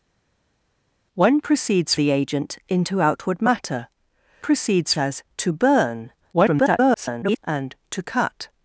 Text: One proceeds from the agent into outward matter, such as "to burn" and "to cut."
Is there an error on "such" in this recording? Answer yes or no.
yes